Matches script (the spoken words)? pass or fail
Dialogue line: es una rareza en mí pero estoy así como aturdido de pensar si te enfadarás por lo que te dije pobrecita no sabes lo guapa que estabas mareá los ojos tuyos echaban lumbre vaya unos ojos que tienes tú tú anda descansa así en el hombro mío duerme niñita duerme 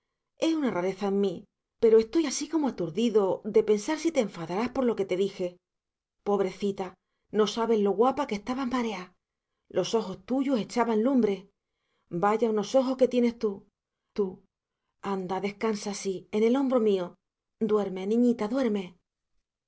pass